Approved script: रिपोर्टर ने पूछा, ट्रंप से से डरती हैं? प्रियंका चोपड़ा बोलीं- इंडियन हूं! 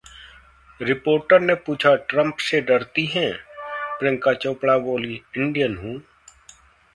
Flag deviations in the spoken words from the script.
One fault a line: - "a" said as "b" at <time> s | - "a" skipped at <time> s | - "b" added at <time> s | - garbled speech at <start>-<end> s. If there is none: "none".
- "से" skipped at 2.6 s